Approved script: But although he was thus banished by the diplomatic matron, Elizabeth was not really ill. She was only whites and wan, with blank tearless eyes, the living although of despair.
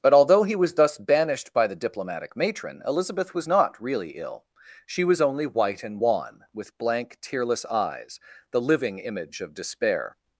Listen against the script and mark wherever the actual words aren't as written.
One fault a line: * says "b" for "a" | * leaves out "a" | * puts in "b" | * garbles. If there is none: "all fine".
* says "white" for "whites"
* says "image" for "although"